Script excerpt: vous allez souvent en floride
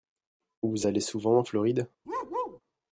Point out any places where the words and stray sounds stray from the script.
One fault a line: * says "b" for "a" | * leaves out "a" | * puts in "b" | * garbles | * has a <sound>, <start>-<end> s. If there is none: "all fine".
* has a bark, 2.1-2.6 s